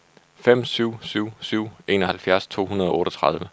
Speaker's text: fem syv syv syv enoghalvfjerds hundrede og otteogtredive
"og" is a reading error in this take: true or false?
false